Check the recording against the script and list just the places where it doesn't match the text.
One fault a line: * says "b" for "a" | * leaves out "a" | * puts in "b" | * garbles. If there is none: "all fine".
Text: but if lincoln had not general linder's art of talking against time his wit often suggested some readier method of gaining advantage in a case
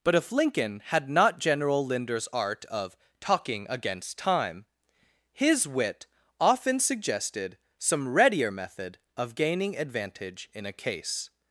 all fine